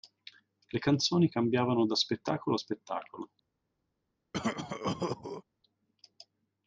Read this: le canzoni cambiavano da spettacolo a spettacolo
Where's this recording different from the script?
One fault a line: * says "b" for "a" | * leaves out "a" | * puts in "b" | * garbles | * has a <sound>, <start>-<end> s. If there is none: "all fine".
* has a cough, 4.3-5.4 s